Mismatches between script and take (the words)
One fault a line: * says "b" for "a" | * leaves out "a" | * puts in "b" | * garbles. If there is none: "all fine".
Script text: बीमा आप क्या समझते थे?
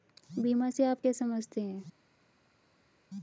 * puts in "से"
* says "हैं" for "थे"